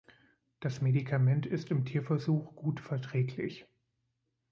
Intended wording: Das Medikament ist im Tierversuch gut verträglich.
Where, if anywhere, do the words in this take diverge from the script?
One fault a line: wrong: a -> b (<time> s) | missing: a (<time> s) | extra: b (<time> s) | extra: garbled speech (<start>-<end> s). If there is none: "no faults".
no faults